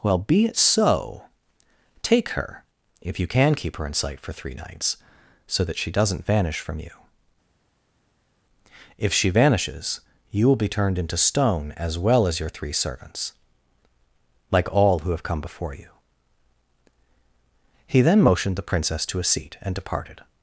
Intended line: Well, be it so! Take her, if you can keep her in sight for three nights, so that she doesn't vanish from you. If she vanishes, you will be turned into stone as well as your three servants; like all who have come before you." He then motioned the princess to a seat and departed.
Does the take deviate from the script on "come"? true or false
false